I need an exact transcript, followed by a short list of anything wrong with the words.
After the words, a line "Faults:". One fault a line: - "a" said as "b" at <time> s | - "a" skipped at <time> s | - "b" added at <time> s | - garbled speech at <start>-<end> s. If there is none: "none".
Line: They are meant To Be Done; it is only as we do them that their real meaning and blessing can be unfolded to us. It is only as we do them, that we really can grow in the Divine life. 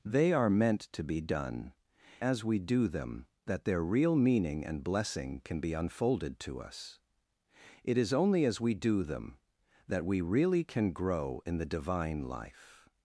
They are meant To Be Done; as we do them that their real meaning and blessing can be unfolded to us. It is only as we do them, that we really can grow in the Divine life.
Faults:
- "it is only" skipped at 1.7 s